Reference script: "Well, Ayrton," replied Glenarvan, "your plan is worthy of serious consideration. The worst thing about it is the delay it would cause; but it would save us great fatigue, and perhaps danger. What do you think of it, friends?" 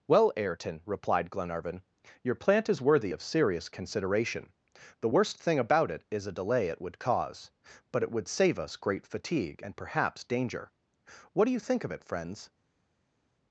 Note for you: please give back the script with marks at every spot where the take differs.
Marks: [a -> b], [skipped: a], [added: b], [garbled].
"Well, Ayrton," replied Glenarvan, "your [plan -> plant] is worthy of serious consideration. The worst thing about it is [the -> a] delay it would cause; but it would save us great fatigue, and perhaps danger. What do you think of it, friends?"